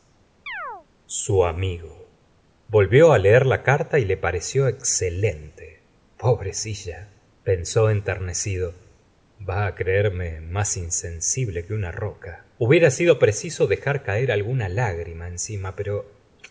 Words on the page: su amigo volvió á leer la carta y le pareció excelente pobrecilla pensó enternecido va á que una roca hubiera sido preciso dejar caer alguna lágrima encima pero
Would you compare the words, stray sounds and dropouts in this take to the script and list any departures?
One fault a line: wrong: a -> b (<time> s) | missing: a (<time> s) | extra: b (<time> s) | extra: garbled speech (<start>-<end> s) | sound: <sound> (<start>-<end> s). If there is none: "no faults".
sound: chirp (0.5-0.9 s)
extra: creerme más insensible (9.7 s)